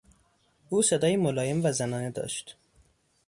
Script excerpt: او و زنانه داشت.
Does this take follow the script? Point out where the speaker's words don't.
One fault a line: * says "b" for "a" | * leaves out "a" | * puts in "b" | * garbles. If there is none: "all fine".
* puts in "صدایی ملایم"